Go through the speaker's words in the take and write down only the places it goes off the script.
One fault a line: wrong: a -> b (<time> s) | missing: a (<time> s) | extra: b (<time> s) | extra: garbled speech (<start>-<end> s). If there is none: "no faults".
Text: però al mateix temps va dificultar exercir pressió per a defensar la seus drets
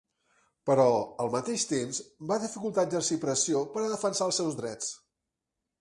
wrong: la -> els (4.3 s)